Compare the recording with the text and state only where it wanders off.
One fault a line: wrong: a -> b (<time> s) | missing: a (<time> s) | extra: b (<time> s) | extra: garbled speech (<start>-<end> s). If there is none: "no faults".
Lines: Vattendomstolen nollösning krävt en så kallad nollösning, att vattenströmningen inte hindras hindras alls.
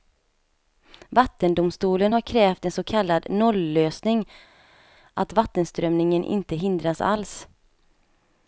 wrong: nollösning -> har (2.1 s)
missing: hindras (7.0 s)